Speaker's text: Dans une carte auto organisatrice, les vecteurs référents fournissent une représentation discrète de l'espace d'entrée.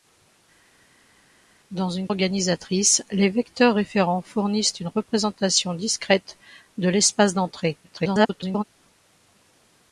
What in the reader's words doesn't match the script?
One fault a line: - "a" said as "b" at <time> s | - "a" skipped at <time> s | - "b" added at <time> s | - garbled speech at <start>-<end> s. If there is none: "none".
- "carte auto" skipped at 2.1 s
- garbled speech at 7.8-8.6 s